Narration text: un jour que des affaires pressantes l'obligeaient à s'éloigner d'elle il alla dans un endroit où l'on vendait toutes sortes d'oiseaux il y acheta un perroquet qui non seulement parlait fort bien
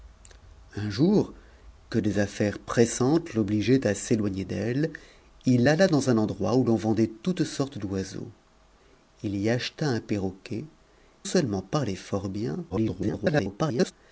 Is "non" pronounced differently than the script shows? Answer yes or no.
yes